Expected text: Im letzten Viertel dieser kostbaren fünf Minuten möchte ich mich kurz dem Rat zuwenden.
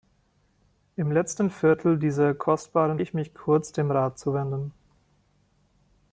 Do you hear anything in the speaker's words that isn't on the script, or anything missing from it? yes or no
yes